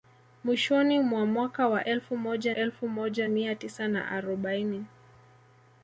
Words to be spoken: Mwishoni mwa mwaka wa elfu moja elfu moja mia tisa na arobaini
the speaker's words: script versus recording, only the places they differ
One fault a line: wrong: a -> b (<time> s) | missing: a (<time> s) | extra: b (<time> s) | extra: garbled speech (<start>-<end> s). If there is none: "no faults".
no faults